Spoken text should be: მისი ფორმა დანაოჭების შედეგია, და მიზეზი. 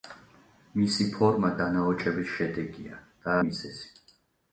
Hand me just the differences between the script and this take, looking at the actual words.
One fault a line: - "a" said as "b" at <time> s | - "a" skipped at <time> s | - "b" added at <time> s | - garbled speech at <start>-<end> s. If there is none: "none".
none